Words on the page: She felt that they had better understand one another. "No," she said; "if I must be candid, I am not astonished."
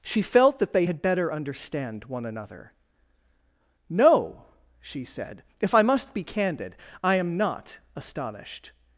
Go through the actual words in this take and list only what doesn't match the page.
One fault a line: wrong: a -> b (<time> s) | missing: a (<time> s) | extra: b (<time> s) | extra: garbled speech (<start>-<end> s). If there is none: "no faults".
no faults